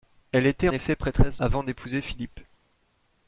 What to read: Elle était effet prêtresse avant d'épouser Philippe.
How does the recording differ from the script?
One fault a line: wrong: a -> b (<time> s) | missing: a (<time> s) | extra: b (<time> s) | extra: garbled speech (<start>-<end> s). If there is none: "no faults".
no faults